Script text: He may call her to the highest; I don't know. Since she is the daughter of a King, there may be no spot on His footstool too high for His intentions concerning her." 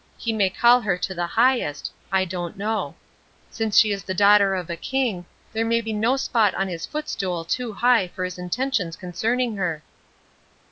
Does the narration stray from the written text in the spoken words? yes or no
no